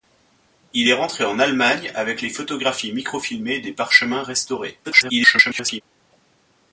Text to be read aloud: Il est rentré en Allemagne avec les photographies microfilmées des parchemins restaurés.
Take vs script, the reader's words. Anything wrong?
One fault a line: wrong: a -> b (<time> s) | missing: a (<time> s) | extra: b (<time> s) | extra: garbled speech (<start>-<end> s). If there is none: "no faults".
extra: garbled speech (4.8-5.8 s)